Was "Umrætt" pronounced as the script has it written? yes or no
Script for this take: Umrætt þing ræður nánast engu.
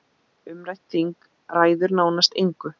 yes